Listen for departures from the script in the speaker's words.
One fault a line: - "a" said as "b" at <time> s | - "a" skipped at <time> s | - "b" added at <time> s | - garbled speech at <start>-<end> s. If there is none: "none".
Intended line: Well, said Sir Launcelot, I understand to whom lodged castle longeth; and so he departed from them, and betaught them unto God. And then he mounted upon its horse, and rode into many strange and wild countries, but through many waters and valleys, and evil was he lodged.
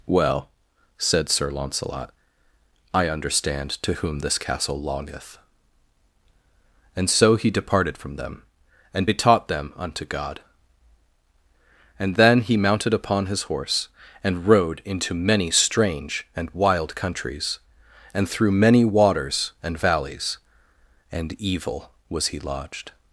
- "lodged" said as "this" at 4.2 s
- "its" said as "his" at 13.3 s
- "but" said as "and" at 18.1 s